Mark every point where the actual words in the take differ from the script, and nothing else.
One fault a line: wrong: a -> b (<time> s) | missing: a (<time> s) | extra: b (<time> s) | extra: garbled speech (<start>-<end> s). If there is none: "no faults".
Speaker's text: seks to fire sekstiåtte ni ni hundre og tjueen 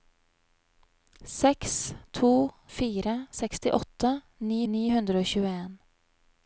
no faults